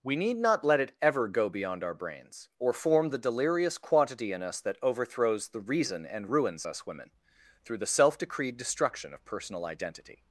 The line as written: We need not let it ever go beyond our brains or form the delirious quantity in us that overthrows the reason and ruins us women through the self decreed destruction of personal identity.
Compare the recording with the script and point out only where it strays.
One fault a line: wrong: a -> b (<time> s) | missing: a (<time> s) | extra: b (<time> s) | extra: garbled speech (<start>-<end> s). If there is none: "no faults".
no faults